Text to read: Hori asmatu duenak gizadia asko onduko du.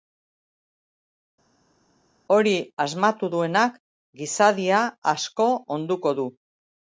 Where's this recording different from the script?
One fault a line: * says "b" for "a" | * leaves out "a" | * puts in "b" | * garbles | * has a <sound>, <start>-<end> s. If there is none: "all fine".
all fine